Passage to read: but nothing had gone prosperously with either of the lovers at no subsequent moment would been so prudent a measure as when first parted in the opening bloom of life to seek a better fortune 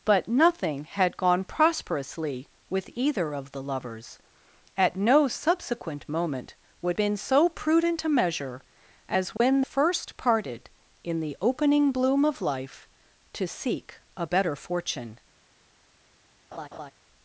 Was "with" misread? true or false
false